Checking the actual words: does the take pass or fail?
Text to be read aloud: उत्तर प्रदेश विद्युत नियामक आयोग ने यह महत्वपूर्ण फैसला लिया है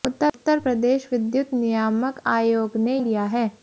fail